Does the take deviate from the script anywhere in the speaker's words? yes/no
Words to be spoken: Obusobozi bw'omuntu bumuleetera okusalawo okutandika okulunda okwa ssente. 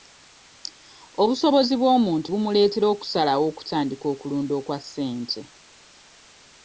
no